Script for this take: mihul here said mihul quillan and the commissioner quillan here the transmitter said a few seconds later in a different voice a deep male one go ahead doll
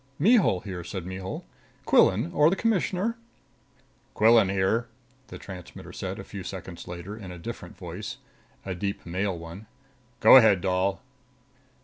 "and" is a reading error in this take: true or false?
true